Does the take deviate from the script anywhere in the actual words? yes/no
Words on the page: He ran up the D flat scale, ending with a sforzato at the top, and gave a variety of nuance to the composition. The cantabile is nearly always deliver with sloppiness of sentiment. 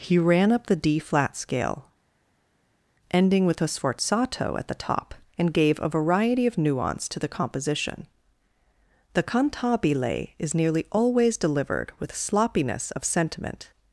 yes